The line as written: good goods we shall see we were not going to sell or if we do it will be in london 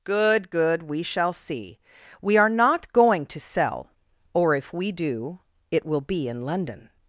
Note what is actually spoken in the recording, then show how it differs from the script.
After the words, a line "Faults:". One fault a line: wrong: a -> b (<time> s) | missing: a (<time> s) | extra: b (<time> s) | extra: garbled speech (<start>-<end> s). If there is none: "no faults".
good good we shall see we are not going to sell or if we do it will be in london
Faults:
wrong: goods -> good (0.5 s)
wrong: were -> are (2.4 s)